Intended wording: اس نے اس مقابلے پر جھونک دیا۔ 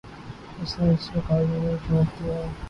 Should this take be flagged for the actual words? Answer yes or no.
yes